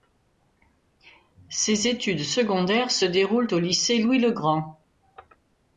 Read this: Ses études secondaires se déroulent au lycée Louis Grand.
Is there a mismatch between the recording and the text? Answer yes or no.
yes